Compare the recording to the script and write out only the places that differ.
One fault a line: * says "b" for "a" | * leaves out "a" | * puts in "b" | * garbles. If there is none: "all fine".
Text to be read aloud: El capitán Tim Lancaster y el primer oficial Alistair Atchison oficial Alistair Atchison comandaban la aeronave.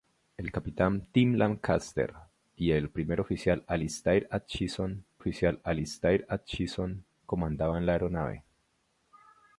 all fine